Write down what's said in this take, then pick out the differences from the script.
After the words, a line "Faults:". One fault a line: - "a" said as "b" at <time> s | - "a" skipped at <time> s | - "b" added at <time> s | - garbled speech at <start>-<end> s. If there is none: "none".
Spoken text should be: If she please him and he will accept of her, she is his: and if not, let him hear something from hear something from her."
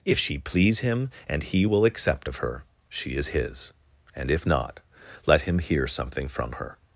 If she please him and he will accept of her, she is his: and if not, let him hear something from her."
Faults:
- "hear something from" skipped at 6.5 s